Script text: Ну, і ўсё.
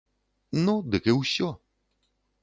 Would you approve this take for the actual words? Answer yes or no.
no